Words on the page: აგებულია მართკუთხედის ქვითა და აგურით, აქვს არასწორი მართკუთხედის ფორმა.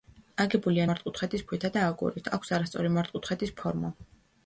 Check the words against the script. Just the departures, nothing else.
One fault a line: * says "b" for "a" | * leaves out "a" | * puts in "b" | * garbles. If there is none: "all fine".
all fine